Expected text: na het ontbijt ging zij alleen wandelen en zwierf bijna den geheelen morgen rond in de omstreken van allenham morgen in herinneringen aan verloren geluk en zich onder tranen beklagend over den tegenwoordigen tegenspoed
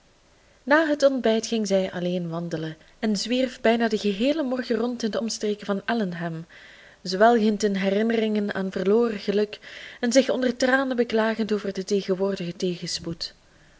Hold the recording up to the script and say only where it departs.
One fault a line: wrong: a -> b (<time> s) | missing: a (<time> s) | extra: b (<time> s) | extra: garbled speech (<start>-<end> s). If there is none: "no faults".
wrong: morgen -> zwelgend (7.0 s)